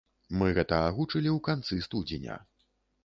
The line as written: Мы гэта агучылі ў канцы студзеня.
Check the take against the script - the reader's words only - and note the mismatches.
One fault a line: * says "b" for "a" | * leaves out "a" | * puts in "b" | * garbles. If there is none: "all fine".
all fine